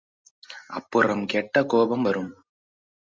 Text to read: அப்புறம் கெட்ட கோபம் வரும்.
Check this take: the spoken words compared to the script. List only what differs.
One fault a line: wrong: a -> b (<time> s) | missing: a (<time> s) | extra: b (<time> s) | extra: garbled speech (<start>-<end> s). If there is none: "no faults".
no faults